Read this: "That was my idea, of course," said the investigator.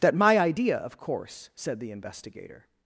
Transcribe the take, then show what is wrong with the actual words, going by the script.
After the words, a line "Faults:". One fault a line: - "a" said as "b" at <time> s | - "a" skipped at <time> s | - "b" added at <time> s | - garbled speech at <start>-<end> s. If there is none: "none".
"That my idea, of course," said the investigator.
Faults:
- "was" skipped at 0.1 s